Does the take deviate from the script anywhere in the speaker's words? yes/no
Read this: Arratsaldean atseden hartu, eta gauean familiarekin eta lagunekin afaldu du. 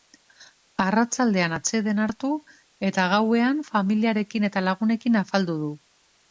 no